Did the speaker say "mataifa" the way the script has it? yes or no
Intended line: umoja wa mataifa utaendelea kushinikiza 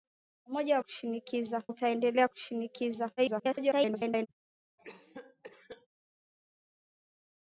no